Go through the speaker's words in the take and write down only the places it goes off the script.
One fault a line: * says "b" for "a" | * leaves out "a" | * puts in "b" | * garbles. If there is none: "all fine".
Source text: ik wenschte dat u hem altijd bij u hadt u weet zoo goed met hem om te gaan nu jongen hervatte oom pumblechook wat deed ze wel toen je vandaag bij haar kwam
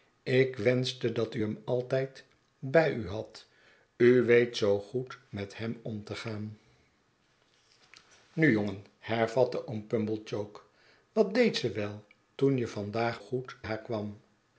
* says "goed" for "bij"